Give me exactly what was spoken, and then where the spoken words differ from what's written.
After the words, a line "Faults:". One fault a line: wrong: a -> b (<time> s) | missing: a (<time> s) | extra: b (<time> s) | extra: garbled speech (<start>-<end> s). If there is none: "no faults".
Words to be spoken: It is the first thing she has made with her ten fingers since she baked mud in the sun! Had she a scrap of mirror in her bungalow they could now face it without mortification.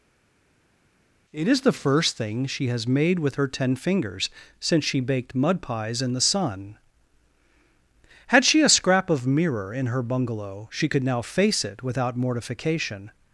It is the first thing she has made with her ten fingers since she baked mud pies in the sun! Had she a scrap of mirror in her bungalow she could now face it without mortification.
Faults:
extra: pies (5.6 s)
wrong: they -> she (10.7 s)